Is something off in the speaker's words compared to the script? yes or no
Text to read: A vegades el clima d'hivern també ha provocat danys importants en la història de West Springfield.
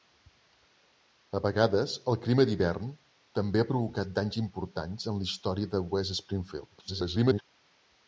yes